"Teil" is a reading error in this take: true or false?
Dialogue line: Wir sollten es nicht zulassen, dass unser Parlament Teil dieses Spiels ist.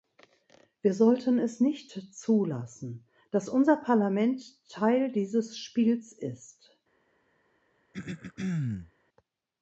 false